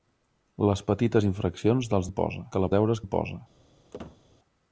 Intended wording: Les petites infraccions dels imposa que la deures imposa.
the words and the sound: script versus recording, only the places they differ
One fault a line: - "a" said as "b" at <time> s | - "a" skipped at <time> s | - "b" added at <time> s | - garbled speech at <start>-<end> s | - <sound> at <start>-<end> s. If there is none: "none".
- squeak at 3.9-4.2 s